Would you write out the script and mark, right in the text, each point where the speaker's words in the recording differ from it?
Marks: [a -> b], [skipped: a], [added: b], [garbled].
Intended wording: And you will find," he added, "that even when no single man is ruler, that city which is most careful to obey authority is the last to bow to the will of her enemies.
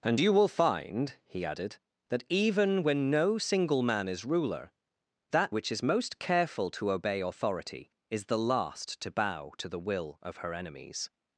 And you will find," he added, "that even when no single man is ruler, that [skipped: city] which is most careful to obey authority is the last to bow to the will of her enemies.